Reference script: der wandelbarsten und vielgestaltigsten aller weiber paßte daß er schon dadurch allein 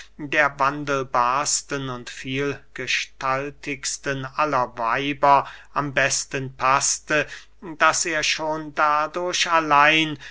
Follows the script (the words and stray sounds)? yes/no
no